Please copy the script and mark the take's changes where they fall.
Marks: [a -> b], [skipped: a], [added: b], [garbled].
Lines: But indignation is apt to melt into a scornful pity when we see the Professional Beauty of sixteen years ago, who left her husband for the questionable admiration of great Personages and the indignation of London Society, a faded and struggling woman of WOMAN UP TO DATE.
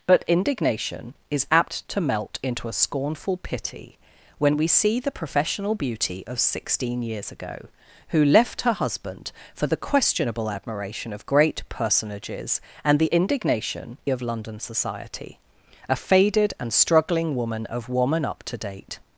But indignation is apt to melt into a scornful pity when we see the Professional Beauty of sixteen years ago, who left her husband for the questionable admiration of great Personages and the indignation of London Society, a faded and struggling woman of WOMAN UP TO DATE.